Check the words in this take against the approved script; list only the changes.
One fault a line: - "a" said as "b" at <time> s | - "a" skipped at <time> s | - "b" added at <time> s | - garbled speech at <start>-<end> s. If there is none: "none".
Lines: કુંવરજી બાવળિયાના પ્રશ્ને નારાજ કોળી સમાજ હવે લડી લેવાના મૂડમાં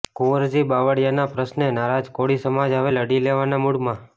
none